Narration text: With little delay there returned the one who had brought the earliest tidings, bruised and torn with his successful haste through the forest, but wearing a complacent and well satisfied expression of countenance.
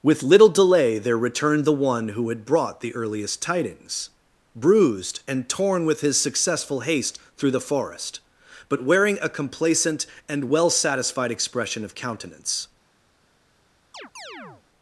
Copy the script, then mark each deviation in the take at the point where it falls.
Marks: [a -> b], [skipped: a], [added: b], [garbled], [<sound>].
With little delay there returned the one who had brought the earliest tidings, bruised and torn with his successful haste through the forest, but wearing a complacent and well satisfied expression of countenance. [chirp]